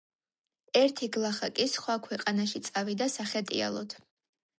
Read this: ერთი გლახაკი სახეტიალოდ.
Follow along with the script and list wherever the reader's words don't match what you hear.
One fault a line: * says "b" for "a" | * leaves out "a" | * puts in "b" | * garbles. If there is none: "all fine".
* puts in "სხვა ქვეყანაში წავიდა"